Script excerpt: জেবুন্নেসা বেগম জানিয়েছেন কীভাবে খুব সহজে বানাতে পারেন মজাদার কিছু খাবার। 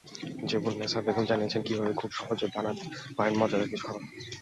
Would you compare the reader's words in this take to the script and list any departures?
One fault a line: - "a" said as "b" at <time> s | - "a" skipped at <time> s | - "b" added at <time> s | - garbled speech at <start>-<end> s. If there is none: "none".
none